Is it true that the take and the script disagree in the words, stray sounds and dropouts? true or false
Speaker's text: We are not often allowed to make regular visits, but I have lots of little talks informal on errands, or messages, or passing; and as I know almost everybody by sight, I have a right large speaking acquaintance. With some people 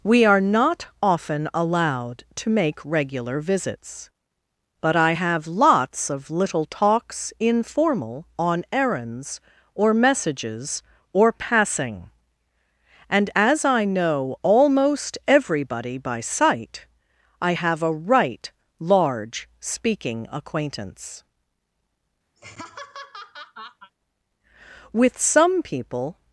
true